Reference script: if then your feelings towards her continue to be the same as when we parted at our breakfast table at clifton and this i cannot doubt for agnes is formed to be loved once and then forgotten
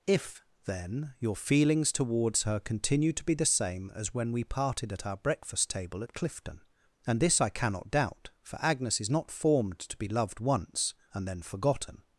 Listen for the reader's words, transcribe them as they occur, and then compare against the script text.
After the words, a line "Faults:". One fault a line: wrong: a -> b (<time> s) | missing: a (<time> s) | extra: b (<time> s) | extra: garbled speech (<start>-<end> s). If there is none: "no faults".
if then your feelings towards her continue to be the same as when we parted at our breakfast table at clifton and this i cannot doubt for agnes is not formed to be loved once and then forgotten
Faults:
extra: not (9.1 s)